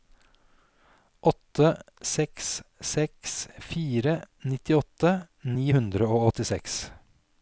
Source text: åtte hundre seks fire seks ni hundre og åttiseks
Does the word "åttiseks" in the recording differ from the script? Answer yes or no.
no